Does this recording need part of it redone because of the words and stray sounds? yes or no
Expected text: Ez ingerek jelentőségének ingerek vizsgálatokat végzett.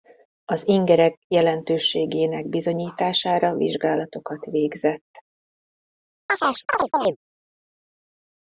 yes